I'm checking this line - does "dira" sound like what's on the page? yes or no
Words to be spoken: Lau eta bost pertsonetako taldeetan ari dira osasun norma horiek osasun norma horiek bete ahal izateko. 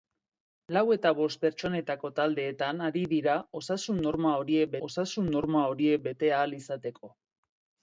yes